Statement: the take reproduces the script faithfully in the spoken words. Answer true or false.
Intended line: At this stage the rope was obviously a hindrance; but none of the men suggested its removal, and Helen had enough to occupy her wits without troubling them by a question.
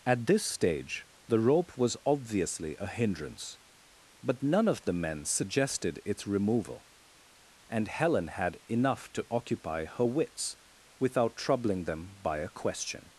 true